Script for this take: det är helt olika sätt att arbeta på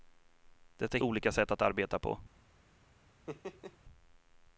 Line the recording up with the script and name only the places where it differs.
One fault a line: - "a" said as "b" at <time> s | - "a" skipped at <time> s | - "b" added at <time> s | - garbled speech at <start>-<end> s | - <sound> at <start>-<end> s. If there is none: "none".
- "helt" skipped at 1.0 s
- laugh at 3.3-3.8 s